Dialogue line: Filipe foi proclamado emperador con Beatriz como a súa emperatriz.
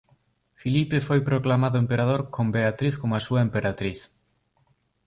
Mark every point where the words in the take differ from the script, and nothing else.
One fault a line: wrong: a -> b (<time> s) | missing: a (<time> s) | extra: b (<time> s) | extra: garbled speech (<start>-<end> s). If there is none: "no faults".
no faults